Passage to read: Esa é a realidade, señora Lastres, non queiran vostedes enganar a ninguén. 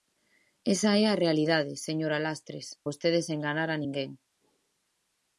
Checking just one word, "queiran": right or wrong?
wrong